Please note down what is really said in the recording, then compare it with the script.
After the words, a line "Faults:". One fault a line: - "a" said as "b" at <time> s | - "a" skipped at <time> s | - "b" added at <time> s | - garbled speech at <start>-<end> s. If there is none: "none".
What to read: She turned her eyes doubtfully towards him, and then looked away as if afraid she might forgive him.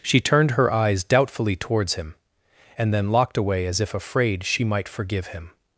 She turned her eyes doubtfully towards him, and then locked away as if afraid she might forgive him.
Faults:
- "looked" said as "locked" at 3.1 s